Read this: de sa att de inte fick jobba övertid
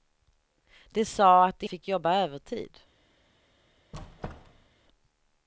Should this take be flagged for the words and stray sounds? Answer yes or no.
yes